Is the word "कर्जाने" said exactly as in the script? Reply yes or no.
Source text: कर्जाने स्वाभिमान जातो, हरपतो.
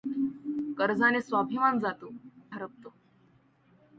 yes